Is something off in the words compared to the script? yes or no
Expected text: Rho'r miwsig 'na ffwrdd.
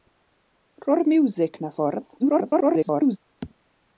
yes